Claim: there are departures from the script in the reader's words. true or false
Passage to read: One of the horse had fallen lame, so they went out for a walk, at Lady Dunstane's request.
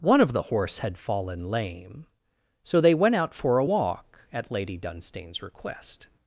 false